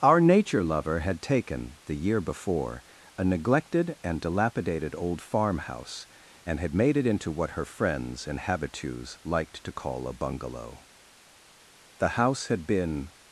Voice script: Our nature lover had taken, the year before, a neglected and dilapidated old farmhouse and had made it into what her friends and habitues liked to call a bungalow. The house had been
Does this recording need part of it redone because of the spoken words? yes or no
no